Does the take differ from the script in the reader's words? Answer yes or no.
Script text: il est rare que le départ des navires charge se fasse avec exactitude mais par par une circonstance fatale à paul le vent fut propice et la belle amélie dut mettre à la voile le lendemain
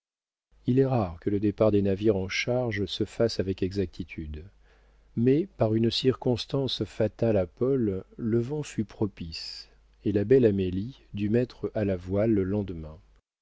yes